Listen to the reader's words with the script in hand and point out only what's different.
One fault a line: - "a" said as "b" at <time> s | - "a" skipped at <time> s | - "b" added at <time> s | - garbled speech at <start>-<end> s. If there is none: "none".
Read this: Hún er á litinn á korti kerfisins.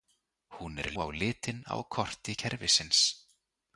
none